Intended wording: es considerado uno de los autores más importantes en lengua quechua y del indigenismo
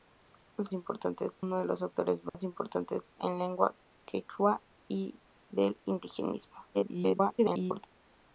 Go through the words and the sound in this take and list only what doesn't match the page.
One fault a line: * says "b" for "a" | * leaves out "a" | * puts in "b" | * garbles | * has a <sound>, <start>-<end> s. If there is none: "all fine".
* says "importantes" for "considerado"
* has a dropout, 2.3-2.3 s
* garbles